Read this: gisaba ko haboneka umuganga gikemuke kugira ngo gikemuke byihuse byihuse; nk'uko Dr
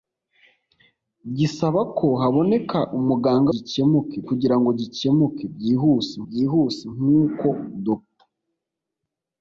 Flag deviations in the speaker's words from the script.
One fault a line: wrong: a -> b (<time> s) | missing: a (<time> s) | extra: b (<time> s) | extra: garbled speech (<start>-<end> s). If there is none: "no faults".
no faults